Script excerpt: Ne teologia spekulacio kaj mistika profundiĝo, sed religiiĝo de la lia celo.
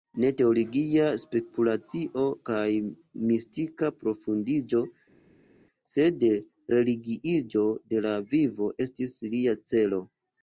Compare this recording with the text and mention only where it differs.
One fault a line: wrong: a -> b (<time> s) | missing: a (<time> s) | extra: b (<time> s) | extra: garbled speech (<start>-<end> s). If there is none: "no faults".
extra: vivo estis (8.3 s)